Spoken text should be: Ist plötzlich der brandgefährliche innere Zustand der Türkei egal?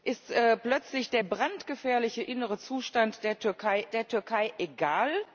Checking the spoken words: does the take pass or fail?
fail